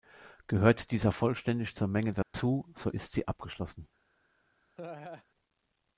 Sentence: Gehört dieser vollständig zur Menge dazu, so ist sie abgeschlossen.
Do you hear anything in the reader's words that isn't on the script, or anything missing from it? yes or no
no